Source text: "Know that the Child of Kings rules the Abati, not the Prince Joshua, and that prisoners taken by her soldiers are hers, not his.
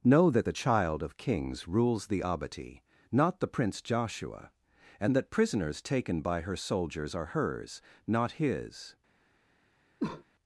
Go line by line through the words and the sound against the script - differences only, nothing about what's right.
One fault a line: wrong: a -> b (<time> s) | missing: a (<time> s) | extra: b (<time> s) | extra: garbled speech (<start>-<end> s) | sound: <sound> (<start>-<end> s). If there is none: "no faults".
sound: cough (10.0-10.2 s)